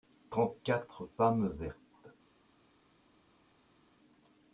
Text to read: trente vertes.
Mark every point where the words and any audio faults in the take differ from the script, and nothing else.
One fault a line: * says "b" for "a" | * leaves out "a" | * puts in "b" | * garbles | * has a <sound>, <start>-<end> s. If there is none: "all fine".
* puts in "quatre femmes"